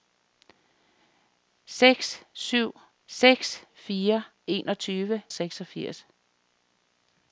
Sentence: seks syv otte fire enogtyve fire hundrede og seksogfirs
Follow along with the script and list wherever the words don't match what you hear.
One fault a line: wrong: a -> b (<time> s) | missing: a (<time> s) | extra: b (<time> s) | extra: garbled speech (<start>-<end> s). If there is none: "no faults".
wrong: otte -> seks (3.1 s)
missing: fire hundrede og (5.2 s)